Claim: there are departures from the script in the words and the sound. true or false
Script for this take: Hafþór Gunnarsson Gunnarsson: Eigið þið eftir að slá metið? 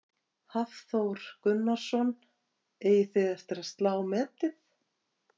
true